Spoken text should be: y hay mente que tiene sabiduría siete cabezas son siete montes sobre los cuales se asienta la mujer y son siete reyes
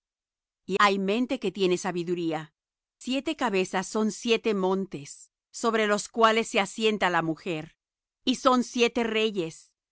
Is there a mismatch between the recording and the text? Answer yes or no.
no